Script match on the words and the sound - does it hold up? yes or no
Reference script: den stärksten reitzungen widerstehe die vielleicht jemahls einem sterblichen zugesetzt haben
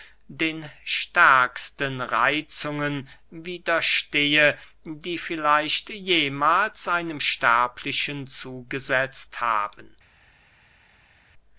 yes